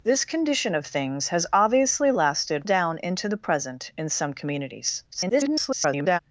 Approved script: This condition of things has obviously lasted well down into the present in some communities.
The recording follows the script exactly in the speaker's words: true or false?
false